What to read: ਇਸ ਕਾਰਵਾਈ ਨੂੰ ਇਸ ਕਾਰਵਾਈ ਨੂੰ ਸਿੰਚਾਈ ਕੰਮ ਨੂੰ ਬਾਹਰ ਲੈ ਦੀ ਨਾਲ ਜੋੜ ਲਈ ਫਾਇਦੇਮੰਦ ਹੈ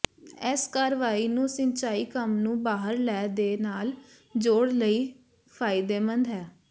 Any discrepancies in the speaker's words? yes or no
yes